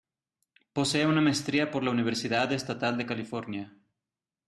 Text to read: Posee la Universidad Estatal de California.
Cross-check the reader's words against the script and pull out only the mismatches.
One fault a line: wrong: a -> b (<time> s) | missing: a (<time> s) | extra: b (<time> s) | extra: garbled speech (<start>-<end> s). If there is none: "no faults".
extra: una maestría por (1.1 s)